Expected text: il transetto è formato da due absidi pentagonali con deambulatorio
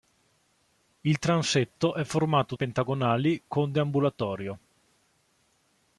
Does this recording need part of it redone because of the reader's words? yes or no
yes